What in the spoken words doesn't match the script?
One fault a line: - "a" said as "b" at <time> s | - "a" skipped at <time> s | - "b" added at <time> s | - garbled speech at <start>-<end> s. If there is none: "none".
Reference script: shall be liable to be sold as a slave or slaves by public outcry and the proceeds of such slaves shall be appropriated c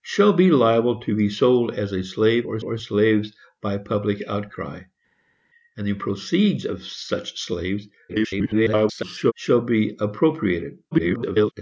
- "or" added at 2.6 s
- garbled speech at 8.1-9.3 s
- garbled speech at 10.9-11.5 s